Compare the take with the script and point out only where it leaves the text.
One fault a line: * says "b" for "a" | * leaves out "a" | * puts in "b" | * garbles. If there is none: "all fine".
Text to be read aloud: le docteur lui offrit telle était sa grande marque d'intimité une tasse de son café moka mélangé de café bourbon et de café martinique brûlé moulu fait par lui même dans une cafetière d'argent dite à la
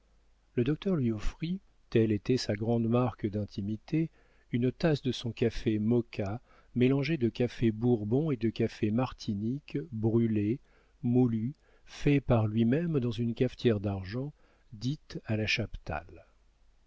all fine